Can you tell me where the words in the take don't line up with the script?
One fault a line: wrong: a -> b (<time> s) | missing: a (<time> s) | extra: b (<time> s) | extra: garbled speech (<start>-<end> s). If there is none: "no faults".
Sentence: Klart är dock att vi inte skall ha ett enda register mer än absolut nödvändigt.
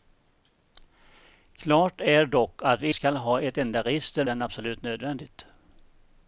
missing: inte (2.9 s)
missing: mer (4.2 s)